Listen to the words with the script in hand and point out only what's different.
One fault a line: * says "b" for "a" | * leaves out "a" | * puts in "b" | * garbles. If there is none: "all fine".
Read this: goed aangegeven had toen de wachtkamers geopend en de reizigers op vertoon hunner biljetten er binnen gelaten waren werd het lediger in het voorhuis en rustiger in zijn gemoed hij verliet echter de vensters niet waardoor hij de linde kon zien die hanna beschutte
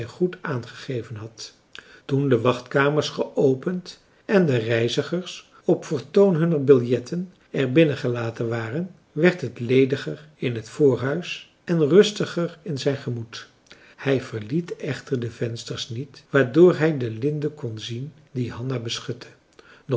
all fine